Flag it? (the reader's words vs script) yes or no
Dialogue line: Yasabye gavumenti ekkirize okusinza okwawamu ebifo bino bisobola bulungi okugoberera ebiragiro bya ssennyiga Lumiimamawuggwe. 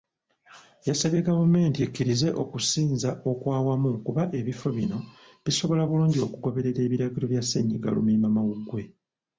yes